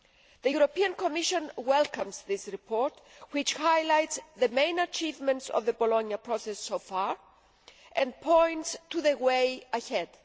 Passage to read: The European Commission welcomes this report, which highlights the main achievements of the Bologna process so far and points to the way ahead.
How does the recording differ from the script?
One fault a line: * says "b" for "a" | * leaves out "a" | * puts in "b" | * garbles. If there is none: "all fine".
all fine